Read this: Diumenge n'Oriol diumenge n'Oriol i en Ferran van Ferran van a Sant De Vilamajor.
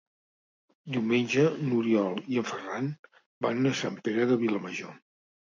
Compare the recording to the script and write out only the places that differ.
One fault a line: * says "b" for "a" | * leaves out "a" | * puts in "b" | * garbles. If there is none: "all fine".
* leaves out "diumenge n'Oriol"
* leaves out "Ferran van"
* puts in "Pere"